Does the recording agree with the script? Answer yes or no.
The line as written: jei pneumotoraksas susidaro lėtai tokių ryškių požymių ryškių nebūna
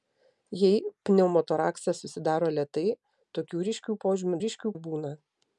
yes